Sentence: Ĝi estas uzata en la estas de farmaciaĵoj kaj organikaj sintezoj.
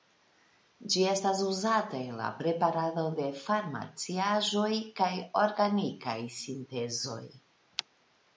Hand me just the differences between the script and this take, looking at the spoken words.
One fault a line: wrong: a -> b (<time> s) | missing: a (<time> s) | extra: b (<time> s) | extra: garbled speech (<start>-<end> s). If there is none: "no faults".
wrong: estas -> preparado (2.4 s)